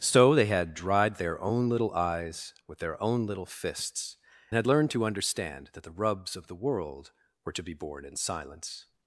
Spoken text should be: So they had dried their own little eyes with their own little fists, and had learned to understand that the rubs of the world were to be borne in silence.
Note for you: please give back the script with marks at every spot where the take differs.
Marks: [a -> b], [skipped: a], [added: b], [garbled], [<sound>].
So they had dried their own little eyes with their own little fists, [skipped: and] had learned to understand that the rubs of the world were to be borne in silence.